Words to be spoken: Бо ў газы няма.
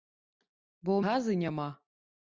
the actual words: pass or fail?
pass